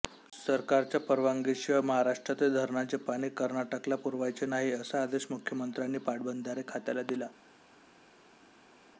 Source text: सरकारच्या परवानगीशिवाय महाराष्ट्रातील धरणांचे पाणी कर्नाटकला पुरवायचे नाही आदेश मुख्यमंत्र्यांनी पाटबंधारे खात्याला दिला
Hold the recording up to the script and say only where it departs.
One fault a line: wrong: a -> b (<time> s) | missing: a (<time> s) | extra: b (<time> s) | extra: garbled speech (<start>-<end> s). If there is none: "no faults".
extra: असा (4.7 s)